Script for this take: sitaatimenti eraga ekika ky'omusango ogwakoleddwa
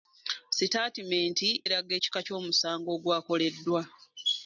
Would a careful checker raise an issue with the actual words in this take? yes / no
no